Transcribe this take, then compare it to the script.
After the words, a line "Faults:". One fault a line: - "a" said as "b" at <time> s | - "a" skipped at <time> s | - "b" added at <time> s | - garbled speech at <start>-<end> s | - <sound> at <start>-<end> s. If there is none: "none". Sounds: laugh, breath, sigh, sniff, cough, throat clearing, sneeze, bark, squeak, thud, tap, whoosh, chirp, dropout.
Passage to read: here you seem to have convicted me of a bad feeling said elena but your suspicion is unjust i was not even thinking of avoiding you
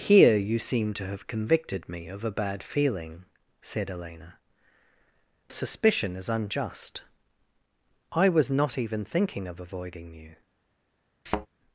here you seem to have convicted me of a bad feeling said elena suspicion is unjust i was not even thinking of avoiding you
Faults:
- "but your" skipped at 4.4 s
- thud at 11.3-11.5 s